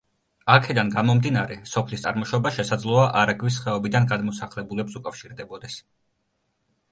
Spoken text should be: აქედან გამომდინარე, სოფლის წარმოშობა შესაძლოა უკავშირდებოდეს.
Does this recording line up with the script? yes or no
no